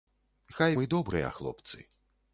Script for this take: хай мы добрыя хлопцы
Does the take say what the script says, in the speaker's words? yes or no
yes